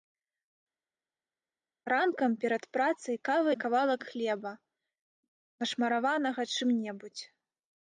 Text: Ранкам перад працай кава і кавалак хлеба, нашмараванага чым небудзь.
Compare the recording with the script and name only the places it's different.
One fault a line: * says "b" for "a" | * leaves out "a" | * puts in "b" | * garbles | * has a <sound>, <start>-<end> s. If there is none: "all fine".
all fine